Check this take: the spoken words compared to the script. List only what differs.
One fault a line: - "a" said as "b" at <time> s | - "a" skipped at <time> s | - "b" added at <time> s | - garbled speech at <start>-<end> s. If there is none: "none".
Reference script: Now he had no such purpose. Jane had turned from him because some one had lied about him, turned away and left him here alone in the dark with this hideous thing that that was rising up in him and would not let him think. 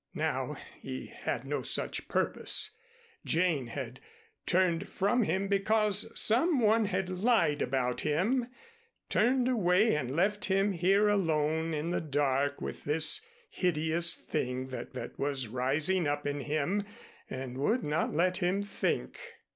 none